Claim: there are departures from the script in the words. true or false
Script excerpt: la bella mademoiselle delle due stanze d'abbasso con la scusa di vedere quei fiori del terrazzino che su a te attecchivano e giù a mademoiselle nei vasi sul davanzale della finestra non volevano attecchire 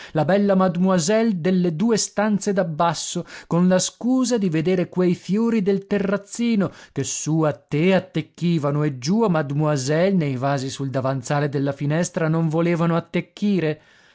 false